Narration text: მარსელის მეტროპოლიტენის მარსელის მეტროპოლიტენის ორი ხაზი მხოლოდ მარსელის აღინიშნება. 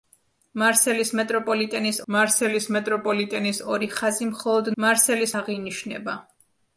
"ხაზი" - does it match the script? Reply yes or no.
yes